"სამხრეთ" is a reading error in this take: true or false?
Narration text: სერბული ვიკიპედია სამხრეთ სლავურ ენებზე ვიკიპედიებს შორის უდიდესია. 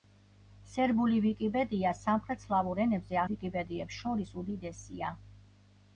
false